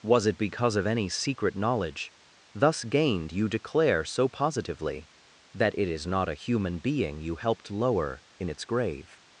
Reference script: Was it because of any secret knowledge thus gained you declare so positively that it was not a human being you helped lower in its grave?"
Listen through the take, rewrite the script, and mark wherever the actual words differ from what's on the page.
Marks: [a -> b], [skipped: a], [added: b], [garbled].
Was it because of any secret knowledge thus gained you declare so positively that it [was -> is] not a human being you helped lower in its grave?"